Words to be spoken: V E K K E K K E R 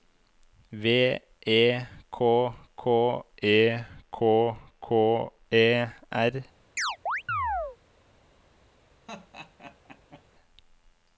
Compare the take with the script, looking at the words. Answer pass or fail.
pass